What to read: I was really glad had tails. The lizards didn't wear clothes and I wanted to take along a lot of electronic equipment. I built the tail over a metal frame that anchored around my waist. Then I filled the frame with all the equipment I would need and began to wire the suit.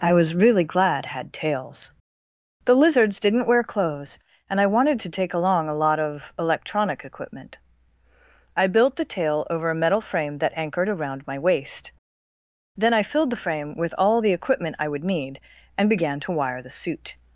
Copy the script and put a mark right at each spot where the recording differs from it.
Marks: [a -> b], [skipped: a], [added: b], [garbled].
I was really glad had tails. The lizards didn't wear clothes and I wanted to take along a lot of electronic equipment. I built the tail over a metal frame that anchored around my waist. Then I filled the frame with all the equipment I would need and began to wire the suit.